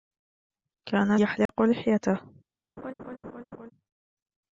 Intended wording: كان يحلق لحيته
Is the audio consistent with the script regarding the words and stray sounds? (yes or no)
no